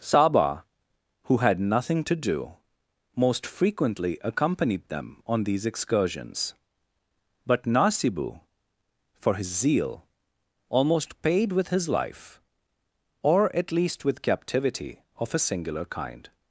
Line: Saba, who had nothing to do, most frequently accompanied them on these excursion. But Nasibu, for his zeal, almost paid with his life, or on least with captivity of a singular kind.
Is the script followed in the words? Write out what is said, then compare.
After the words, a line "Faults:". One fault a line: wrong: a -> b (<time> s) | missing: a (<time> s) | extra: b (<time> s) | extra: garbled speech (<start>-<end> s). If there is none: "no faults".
Saba, who had nothing to do, most frequently accompanied them on these excursions. But Nasibu, for his zeal, almost paid with his life, or at least with captivity of a singular kind.
Faults:
wrong: excursion -> excursions (5.6 s)
wrong: on -> at (13.6 s)